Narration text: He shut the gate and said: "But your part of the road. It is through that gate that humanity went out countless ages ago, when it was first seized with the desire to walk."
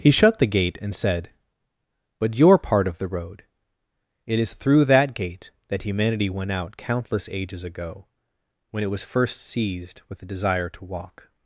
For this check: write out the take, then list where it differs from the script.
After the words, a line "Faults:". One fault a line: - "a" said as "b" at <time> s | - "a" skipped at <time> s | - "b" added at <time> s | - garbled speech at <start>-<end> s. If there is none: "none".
He shut the gate and said: "But your part of the road. It is through that gate that humanity went out countless ages ago, when it was first seized with the desire to walk."
Faults:
none